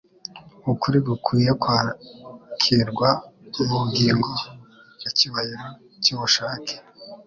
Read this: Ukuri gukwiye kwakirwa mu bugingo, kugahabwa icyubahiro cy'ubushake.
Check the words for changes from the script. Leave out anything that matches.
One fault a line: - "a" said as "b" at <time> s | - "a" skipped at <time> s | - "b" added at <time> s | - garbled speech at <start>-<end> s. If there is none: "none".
- "kugahabwa" skipped at 4.3 s